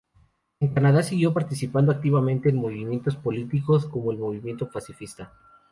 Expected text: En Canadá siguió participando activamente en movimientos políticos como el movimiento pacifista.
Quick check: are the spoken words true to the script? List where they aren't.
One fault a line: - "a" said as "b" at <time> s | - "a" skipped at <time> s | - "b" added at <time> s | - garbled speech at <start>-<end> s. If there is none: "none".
none